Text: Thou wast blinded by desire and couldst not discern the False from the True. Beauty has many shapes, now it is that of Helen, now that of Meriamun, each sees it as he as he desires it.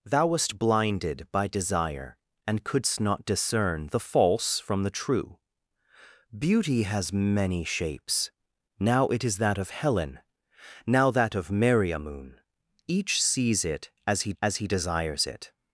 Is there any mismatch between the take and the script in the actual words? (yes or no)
no